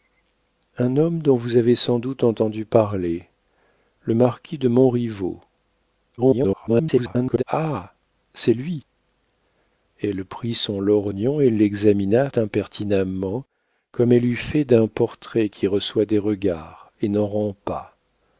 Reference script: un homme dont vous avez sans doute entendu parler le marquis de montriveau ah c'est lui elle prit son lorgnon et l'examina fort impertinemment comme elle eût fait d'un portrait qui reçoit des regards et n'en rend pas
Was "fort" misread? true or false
true